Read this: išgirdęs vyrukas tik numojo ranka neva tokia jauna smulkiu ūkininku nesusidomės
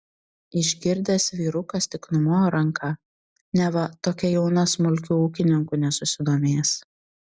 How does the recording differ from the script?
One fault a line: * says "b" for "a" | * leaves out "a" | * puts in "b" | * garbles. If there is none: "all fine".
all fine